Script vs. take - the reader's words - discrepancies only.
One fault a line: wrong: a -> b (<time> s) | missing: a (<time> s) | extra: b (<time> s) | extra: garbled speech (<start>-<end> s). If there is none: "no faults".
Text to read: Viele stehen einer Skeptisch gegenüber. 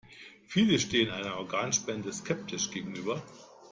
extra: Organspende (1.4 s)